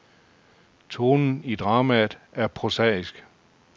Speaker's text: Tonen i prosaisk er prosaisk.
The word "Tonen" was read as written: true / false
true